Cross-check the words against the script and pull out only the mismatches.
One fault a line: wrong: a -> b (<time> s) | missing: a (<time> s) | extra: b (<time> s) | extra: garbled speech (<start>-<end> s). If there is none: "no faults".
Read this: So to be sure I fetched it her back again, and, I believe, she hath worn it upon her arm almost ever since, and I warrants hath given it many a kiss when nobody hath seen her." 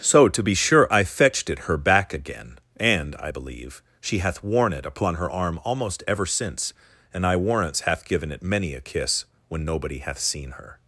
no faults